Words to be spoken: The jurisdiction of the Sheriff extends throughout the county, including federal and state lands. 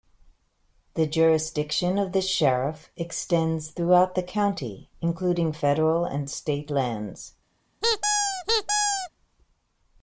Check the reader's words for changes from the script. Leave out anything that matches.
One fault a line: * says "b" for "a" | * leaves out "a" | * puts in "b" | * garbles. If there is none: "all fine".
all fine